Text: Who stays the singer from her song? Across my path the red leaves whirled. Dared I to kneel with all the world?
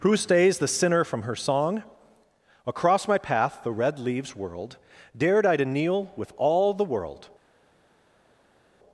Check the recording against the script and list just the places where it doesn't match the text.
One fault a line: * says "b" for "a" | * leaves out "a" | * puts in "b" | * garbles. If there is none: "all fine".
* says "sinner" for "singer"